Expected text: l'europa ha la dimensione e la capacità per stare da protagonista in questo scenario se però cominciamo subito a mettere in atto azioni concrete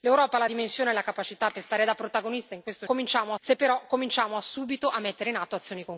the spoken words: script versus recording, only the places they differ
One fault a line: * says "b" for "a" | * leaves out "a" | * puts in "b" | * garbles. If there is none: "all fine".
* says "cominciamo" for "scenario"